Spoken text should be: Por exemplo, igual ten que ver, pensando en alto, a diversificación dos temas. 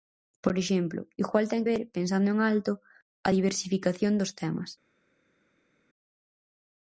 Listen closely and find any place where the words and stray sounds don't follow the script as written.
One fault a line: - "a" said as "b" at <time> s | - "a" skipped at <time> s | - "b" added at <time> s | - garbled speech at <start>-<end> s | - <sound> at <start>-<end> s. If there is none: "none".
- "que" skipped at 1.6 s